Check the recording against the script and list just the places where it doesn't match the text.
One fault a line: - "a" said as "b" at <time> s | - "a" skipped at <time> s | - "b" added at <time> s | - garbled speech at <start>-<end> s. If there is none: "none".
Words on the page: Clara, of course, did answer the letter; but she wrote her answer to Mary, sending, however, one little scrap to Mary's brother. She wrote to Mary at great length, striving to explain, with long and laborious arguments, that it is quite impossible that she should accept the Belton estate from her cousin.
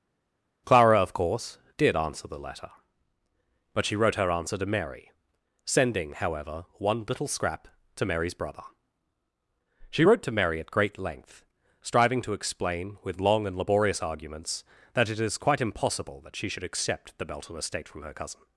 none